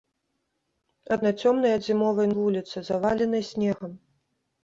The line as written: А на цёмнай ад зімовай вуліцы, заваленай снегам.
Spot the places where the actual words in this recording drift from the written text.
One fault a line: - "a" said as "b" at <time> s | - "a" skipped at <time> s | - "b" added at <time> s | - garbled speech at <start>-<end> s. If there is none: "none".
none